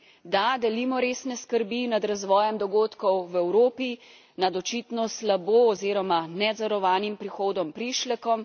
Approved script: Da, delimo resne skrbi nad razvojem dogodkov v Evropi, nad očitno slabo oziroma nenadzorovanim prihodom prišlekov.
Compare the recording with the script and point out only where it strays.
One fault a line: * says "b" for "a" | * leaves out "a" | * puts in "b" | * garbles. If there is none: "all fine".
all fine